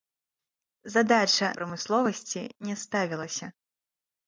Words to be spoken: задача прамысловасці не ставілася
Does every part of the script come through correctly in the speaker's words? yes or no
yes